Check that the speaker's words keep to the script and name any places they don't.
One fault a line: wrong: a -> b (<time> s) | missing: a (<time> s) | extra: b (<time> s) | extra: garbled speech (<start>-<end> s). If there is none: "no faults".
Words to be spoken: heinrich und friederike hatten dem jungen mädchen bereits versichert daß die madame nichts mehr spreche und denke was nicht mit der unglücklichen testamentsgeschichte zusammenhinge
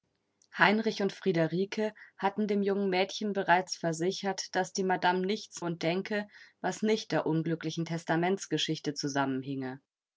missing: mehr spreche (5.6 s)
missing: mit (7.1 s)